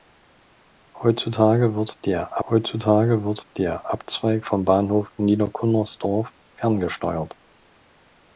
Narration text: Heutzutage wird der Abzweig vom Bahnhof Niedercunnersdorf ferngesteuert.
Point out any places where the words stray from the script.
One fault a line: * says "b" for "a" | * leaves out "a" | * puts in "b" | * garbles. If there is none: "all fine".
* puts in "heutzutage wird der"